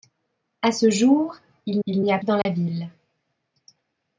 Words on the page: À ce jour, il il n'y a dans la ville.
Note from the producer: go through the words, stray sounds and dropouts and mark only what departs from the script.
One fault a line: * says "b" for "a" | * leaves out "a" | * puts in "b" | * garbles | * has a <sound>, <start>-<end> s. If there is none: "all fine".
* has a dropout, 2.4-2.5 s